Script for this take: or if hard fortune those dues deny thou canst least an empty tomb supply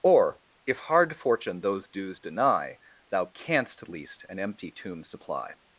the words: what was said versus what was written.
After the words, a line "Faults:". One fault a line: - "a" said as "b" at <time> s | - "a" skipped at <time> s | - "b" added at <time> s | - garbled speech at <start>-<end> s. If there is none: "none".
or if hard fortune those dues deny thou canst least an empty tomb supply
Faults:
none